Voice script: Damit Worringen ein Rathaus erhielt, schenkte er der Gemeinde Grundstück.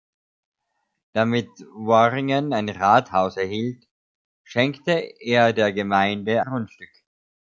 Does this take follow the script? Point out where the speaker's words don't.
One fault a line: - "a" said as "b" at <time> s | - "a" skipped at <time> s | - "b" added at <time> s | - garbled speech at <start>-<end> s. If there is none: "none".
none